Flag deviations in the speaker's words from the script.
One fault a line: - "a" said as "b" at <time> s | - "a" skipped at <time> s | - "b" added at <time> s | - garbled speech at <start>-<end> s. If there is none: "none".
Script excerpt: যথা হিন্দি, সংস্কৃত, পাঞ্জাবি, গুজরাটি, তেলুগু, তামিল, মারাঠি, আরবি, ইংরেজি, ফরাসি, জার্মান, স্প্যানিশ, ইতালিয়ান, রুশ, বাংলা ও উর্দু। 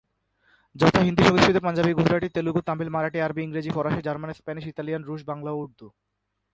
none